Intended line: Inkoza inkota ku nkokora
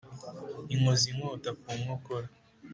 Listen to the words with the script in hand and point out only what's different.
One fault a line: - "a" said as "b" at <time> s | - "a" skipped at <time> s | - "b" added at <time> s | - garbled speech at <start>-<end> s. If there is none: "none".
none